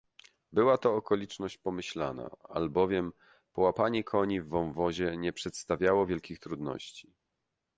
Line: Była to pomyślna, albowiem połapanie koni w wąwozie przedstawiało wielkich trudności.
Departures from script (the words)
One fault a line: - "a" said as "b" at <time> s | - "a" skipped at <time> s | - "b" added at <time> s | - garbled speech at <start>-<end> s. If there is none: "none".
- "okoliczność" added at 0.9 s
- "nie" added at 5.2 s